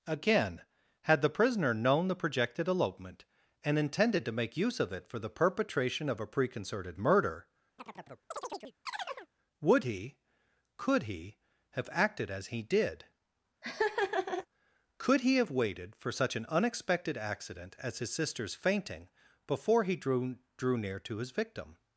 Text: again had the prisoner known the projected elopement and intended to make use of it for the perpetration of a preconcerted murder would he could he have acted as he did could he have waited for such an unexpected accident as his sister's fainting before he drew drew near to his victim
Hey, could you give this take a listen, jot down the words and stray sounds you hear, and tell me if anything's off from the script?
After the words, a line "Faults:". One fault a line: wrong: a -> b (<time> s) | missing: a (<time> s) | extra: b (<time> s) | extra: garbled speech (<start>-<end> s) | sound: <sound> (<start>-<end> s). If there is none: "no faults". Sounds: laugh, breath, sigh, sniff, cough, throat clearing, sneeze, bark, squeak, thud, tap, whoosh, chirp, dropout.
again had the prisoner known the projected elopement and intended to make use of it for the perpetration of a preconcerted murder would he could he have acted as he did could he have waited for such an unexpected accident as his sister's fainting before he drew drew near to his victim
Faults:
sound: chirp (7.8-9.3 s)
sound: laugh (13.6-14.5 s)